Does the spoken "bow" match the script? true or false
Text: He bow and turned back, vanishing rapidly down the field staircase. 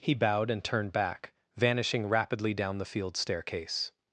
false